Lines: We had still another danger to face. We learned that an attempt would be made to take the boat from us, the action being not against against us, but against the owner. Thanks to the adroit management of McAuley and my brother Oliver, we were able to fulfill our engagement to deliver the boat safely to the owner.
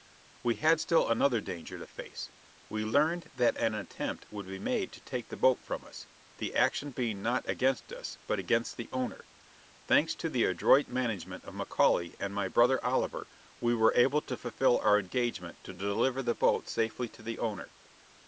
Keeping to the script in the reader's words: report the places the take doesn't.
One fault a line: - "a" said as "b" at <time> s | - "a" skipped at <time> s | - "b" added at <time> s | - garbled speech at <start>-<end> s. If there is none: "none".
- "against" skipped at 7.9 s